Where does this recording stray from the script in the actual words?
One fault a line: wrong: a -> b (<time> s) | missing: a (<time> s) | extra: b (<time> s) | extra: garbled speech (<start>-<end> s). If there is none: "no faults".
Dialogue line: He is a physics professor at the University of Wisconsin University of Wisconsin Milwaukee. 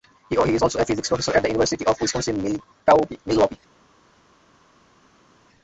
extra: also (0.6 s)
missing: University of Wisconsin (2.6 s)